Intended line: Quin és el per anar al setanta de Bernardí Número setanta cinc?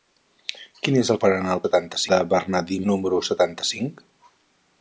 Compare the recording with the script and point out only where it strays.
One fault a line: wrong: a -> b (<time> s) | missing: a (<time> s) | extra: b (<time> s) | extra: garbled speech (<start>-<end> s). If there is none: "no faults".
no faults